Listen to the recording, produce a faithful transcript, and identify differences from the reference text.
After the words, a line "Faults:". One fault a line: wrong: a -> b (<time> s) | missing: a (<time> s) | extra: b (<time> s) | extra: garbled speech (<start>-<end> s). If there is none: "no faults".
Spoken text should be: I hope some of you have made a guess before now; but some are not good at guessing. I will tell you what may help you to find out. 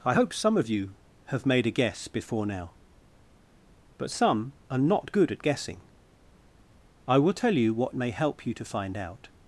I hope some of you have made a guess before now; but some are not good at guessing. I will tell you what may help you to find out.
Faults:
no faults